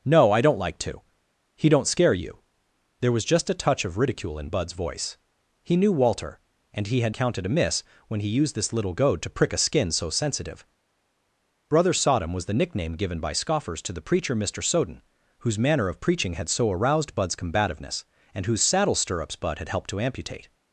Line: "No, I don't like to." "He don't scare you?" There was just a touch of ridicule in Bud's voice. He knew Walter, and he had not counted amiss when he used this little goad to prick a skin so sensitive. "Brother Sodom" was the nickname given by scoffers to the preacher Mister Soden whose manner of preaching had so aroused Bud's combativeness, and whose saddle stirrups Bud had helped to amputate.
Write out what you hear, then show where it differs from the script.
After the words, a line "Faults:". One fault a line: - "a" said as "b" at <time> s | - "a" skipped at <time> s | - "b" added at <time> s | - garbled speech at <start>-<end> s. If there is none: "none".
"No, I don't like to." "He don't scare you?" There was just a touch of ridicule in Bud's voice. He knew Walter, and he had counted amiss when he used this little goad to prick a skin so sensitive. "Brother Sodom" was the nickname given by scoffers to the preacher Mister Soden whose manner of preaching had so aroused Bud's combativeness, and whose saddle stirrups Bud had helped to amputate.
Faults:
- "not" skipped at 7.2 s